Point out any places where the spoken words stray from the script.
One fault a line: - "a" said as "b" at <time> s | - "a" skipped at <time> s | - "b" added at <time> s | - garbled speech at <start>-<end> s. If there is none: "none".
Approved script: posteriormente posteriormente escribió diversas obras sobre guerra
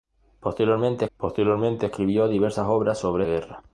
none